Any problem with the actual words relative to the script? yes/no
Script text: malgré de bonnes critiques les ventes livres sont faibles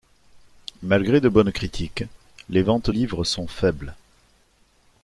no